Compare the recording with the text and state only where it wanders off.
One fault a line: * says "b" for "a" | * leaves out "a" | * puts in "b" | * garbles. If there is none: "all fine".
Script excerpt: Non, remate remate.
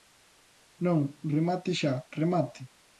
* puts in "xa"